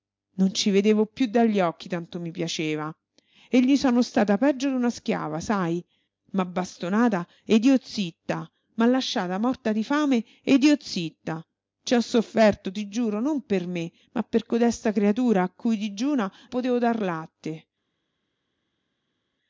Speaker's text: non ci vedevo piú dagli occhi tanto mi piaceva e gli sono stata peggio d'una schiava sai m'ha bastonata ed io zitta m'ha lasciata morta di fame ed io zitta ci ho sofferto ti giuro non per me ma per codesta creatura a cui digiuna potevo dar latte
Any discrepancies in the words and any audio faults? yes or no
no